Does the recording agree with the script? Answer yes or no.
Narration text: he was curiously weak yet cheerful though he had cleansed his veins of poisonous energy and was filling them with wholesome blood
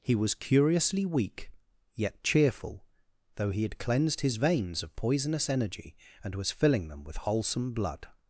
yes